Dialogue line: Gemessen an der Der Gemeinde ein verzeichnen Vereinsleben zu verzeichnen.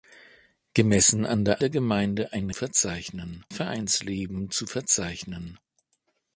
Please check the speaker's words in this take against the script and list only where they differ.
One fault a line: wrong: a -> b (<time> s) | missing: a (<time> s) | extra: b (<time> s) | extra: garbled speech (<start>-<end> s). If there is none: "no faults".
no faults